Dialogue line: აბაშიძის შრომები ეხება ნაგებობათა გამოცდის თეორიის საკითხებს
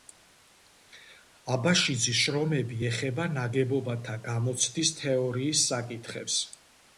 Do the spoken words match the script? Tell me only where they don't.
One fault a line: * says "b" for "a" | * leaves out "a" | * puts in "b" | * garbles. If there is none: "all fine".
all fine